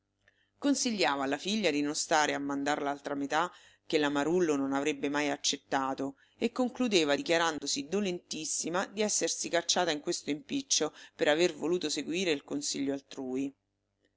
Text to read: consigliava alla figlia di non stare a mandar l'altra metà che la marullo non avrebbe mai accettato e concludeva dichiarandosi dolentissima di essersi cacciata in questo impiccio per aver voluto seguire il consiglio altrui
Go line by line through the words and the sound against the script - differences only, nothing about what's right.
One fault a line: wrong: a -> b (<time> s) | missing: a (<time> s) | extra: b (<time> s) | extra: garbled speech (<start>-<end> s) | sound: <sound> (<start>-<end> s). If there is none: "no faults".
sound: dropout (7.6-7.6 s)